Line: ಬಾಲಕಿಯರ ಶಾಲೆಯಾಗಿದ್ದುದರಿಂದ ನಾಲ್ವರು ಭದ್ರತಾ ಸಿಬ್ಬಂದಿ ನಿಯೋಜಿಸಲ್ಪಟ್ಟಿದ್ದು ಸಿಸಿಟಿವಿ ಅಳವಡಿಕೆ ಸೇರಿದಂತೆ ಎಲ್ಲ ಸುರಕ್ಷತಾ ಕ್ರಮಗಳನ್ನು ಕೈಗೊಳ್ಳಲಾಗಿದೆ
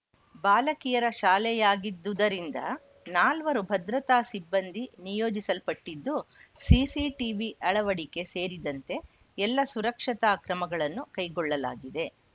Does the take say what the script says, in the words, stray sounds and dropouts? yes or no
yes